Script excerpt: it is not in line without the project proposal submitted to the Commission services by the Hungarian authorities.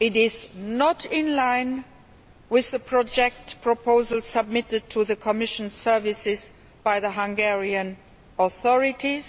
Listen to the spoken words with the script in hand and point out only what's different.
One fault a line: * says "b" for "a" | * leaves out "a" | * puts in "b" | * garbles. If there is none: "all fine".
* says "with" for "without"